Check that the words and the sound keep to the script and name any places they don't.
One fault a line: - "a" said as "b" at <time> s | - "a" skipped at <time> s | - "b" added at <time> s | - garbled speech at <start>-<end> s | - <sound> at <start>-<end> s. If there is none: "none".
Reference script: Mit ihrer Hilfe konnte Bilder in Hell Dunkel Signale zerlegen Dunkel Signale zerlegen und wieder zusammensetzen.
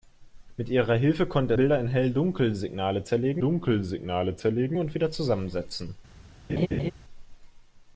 - laugh at 6.5-6.9 s